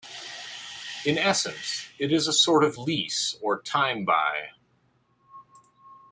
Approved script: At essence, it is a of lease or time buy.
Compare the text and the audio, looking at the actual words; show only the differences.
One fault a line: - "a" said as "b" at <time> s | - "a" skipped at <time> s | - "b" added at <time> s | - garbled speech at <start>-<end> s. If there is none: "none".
- "At" said as "In" at 1.1 s
- "sort" added at 2.3 s